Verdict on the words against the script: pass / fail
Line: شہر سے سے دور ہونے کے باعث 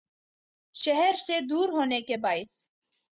fail